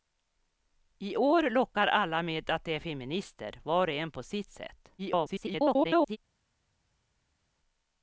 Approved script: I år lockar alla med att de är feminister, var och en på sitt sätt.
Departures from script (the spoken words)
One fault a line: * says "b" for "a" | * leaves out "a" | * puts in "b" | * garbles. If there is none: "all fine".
* garbles